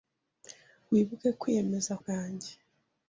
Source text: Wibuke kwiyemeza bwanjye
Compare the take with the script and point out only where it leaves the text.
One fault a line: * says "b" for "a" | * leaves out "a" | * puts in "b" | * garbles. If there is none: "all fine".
all fine